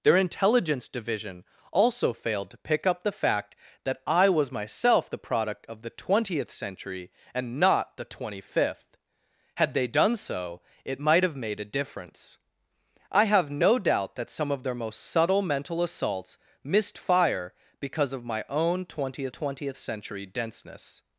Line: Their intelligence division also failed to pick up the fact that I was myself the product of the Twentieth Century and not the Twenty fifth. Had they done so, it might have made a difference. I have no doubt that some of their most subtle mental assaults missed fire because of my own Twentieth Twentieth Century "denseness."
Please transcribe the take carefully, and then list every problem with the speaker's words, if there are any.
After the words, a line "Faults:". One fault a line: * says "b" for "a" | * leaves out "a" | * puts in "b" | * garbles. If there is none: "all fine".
Their intelligence division also failed to pick up the fact that I was myself the product of the Twentieth Century and not the Twenty fifth. Had they done so, it might have made a difference. I have no doubt that some of their most subtle mental assaults missed fire because of my own Twentieth Twentieth Century "denseness."
Faults:
all fine